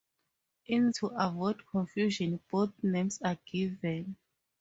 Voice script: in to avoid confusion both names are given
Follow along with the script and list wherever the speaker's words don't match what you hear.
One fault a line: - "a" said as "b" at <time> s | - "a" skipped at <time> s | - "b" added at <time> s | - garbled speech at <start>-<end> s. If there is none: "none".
none